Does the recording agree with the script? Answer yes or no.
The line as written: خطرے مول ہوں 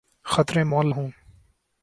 yes